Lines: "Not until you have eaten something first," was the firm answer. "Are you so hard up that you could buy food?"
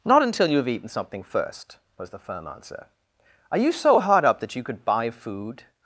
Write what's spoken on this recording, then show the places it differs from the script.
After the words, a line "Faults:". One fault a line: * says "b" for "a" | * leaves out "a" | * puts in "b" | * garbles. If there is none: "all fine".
"Not until you have eaten something first," was the firm answer. "Are you so hard up that you could buy food?"
Faults:
all fine